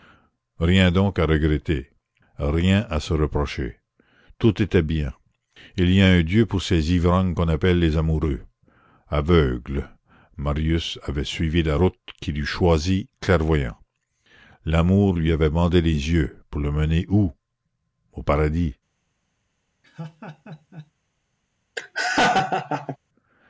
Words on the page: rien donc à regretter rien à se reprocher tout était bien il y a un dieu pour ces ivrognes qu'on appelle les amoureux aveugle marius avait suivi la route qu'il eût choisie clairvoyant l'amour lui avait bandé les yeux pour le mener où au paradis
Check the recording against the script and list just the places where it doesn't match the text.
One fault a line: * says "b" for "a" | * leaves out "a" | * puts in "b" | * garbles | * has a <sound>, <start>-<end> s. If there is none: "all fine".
* has a laugh, 19.8-20.9 s
* has a laugh, 21.8-23.0 s